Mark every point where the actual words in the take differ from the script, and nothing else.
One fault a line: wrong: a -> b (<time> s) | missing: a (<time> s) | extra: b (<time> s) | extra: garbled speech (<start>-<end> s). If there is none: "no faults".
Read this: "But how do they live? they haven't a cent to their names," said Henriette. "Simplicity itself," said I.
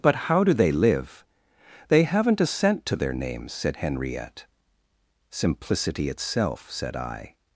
no faults